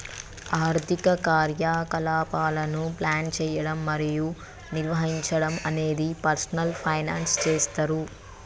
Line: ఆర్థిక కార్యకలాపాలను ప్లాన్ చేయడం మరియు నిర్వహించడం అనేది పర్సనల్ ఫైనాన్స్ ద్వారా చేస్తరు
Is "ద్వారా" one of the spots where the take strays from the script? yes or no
yes